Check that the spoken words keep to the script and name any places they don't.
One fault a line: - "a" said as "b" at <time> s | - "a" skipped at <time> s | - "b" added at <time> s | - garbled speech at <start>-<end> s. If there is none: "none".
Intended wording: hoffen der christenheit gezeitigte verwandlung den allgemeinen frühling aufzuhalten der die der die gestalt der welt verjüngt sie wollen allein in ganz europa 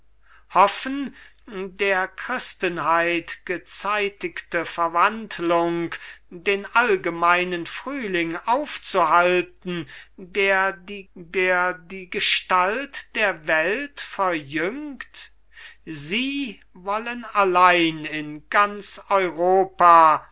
none